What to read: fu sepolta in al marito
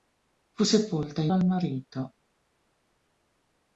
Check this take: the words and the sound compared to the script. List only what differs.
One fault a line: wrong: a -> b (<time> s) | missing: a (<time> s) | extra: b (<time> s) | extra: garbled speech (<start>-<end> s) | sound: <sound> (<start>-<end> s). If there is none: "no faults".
no faults